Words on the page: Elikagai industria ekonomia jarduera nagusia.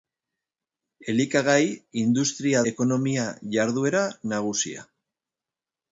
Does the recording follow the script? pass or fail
pass